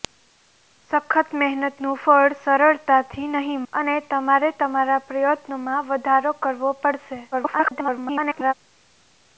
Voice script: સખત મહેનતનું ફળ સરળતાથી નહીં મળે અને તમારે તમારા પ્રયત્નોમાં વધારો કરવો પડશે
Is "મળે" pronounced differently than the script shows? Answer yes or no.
yes